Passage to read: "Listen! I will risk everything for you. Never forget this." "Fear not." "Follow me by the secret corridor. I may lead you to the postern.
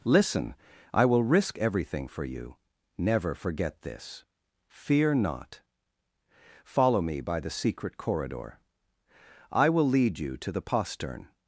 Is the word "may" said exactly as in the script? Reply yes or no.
no